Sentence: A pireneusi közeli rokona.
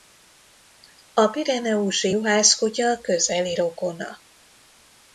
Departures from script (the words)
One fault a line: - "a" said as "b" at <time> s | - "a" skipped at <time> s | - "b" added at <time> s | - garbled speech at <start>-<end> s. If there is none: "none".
- "juhászkutya" added at 2.1 s